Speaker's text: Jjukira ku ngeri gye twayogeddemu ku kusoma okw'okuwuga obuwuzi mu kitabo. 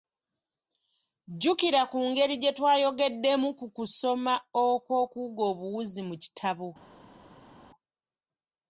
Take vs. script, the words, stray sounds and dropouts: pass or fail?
pass